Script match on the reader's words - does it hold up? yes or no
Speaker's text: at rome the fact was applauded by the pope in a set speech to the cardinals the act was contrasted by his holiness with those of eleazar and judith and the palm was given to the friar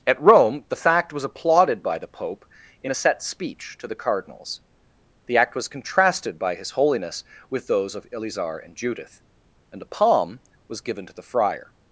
no